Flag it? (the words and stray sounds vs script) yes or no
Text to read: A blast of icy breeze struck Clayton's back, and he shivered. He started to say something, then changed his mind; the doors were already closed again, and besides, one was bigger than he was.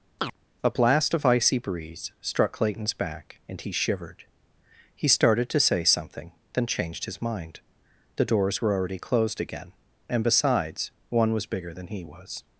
yes